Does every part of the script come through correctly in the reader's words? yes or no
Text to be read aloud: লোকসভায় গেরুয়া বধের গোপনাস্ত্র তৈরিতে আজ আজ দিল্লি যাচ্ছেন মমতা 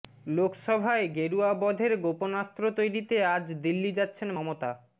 no